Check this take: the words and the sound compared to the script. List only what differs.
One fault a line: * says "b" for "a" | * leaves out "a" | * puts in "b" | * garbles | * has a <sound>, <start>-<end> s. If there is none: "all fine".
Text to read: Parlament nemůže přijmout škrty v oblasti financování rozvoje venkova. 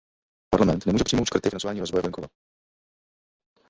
* leaves out "oblasti"